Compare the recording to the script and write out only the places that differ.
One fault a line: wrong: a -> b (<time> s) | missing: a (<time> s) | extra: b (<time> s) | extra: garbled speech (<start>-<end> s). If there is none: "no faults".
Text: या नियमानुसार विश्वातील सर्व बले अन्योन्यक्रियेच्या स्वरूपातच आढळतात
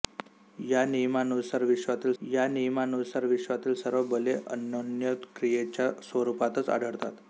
extra: या नियमानुसार विश्वातील (2.2 s)